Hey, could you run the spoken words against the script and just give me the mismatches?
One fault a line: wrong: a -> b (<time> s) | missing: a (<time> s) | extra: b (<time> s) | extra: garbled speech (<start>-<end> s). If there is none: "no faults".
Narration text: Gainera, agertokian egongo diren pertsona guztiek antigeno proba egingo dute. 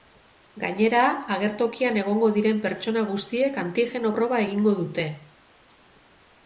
no faults